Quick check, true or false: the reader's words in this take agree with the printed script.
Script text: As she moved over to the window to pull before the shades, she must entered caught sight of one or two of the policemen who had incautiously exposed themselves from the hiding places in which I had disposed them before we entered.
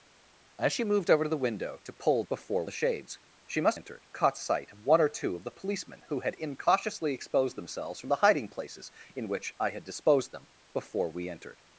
true